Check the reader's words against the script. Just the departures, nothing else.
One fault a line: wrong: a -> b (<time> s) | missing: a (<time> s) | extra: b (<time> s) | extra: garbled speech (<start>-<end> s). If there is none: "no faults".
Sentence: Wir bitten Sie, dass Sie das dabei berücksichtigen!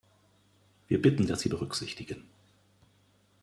missing: Sie (1.3 s)
missing: das dabei (1.5 s)